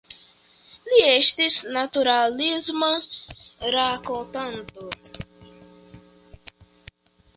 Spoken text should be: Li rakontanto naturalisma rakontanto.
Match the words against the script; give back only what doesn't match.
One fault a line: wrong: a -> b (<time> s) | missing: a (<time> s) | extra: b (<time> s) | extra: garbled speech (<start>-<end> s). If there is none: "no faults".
wrong: rakontanto -> estis (1.1 s)